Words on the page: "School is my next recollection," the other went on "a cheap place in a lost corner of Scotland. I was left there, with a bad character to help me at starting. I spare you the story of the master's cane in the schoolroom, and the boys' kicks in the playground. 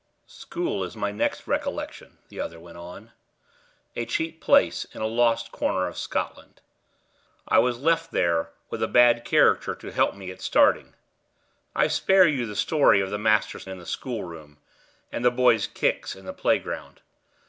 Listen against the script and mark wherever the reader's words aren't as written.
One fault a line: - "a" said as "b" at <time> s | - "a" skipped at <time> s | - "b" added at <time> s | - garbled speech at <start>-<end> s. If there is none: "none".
- "cane" skipped at 13.7 s